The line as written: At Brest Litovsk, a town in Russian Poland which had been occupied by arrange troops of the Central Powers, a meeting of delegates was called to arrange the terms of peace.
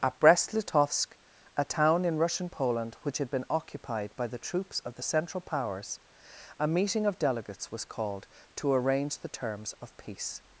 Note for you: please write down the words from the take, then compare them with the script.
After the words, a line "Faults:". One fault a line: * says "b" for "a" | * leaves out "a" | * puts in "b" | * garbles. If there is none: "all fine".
At Brest Litovsk, a town in Russian Poland which had been occupied by the troops of the Central Powers, a meeting of delegates was called to arrange the terms of peace.
Faults:
* says "the" for "arrange"